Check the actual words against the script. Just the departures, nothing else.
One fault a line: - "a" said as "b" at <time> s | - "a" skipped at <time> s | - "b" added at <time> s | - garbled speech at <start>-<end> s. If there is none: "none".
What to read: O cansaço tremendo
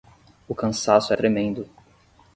none